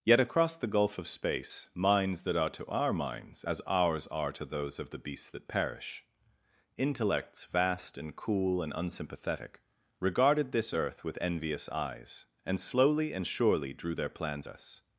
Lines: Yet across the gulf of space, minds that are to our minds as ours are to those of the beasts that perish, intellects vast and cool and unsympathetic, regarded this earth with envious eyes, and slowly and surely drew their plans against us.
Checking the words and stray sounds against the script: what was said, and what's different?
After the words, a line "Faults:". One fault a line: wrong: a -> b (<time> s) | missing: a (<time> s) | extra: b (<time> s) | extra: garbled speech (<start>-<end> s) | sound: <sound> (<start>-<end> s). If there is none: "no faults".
Yet across the gulf of space, minds that are to our minds as ours are to those of the beasts that perish, intellects vast and cool and unsympathetic, regarded this earth with envious eyes, and slowly and surely drew their plans us.
Faults:
missing: against (14.5 s)